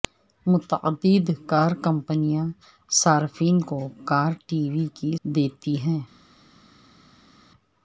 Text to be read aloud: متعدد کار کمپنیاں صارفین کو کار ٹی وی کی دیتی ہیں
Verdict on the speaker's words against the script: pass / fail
pass